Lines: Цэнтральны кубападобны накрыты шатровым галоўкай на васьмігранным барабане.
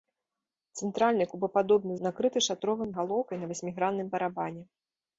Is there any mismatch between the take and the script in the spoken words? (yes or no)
no